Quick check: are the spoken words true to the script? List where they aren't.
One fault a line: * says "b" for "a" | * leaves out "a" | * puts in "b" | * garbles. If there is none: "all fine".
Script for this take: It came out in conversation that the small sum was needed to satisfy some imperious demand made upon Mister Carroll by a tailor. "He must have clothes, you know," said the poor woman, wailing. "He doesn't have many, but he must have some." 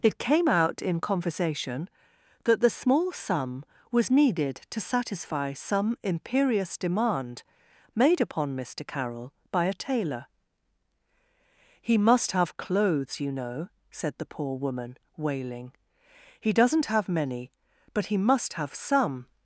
all fine